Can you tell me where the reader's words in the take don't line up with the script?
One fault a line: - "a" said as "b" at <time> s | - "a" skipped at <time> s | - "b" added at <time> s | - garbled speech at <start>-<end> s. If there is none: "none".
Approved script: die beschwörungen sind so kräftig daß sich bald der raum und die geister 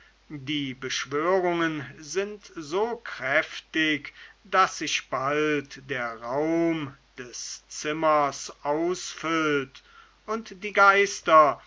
- "des zimmers ausfüllt" added at 7.2 s